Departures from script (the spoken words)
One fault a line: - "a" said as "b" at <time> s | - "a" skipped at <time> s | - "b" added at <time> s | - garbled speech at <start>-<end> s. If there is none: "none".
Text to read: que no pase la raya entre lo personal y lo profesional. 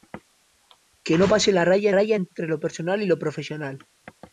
- "raya" added at 1.9 s